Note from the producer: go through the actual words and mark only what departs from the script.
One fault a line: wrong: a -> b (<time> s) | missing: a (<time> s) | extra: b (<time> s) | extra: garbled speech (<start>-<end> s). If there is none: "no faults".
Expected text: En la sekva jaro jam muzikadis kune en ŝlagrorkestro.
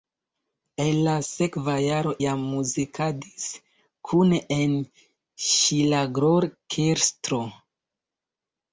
no faults